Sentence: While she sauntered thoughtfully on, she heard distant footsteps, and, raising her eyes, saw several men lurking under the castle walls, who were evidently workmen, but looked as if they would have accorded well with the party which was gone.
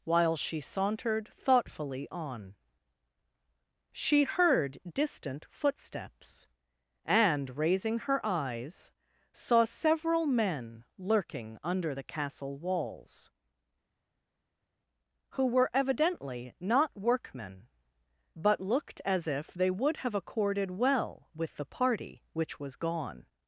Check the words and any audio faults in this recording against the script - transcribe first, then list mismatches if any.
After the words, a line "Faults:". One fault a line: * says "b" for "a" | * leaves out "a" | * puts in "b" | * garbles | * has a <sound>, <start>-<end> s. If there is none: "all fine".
While she sauntered thoughtfully on, she heard distant footsteps, and, raising her eyes, saw several men lurking under the castle walls, who were evidently not workmen, but looked as if they would have accorded well with the party which was gone.
Faults:
* puts in "not"